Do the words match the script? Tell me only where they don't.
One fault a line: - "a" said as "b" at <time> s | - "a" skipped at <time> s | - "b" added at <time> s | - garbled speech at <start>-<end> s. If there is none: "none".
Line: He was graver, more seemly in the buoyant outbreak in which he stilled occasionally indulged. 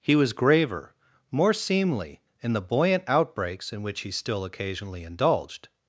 - "outbreak" said as "outbreaks" at 3.1 s
- "stilled" said as "still" at 4.1 s